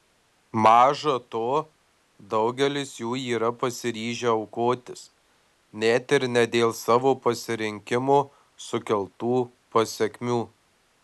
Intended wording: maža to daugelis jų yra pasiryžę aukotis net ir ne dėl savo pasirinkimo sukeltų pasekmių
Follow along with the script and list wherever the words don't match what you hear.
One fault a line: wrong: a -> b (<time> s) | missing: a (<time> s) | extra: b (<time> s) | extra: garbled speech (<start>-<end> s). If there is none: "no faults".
no faults